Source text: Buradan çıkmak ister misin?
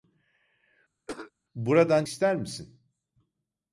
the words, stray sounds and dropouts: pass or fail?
fail